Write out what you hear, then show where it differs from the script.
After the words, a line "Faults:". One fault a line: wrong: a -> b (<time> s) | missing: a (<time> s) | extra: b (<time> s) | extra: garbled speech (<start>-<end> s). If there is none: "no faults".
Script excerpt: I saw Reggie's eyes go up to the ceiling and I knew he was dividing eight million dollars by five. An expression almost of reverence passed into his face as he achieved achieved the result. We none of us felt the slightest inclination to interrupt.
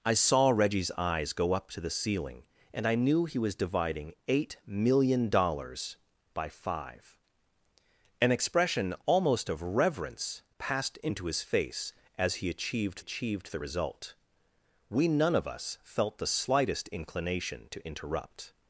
I saw Reggie's eyes go up to the ceiling and I knew he was dividing eight million dollars by five. An expression almost of reverence passed into his face as he achieved achieved the result. We none of us felt the slightest inclination to interrupt.
Faults:
no faults